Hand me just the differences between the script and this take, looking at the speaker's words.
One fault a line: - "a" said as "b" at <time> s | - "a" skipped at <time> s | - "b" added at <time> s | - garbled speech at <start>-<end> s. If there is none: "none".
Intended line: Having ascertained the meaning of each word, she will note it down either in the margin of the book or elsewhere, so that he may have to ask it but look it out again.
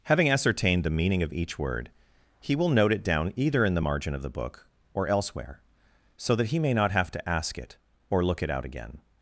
- "she" said as "he" at 2.4 s
- "not" added at 6.7 s
- "but" said as "or" at 8.1 s